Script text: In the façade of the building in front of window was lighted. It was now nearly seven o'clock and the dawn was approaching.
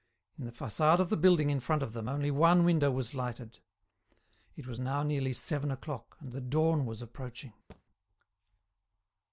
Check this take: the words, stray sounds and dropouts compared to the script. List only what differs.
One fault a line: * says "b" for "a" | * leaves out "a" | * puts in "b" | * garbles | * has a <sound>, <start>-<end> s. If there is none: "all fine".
* puts in "them only one"
* has a thud, 7.7-7.8 s